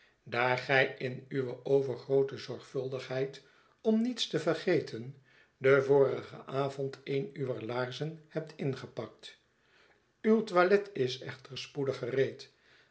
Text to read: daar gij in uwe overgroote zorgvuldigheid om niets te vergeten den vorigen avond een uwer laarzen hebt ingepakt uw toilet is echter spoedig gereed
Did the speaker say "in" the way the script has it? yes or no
yes